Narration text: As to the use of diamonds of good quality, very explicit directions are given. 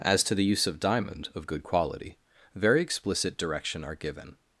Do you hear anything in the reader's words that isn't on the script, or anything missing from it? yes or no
yes